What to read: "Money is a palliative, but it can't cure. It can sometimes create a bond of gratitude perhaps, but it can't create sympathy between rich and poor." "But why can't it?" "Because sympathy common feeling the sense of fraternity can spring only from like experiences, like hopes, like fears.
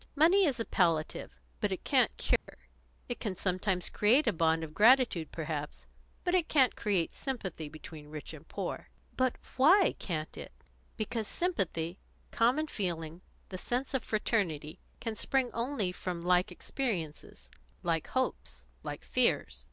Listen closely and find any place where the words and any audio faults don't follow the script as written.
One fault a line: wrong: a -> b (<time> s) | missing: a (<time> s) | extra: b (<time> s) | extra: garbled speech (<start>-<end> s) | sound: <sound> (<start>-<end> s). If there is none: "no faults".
sound: dropout (2.4-2.5 s)